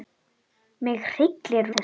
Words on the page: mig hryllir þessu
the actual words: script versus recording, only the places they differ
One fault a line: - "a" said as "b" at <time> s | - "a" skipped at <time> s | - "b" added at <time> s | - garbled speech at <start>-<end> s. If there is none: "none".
none